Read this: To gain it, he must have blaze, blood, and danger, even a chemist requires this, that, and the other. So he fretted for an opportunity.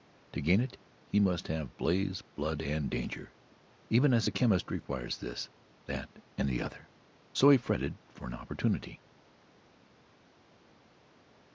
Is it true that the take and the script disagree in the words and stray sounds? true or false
true